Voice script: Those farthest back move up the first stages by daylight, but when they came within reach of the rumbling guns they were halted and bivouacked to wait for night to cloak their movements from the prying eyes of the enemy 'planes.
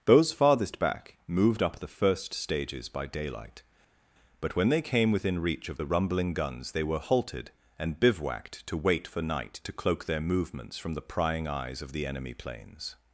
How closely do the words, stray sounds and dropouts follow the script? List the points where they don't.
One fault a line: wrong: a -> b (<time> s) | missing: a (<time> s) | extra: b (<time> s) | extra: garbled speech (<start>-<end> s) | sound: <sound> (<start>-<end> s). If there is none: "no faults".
wrong: move -> moved (1.3 s)